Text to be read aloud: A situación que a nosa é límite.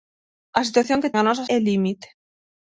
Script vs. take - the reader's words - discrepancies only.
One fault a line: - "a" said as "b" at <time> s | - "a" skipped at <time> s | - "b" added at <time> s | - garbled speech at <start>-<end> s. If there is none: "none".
none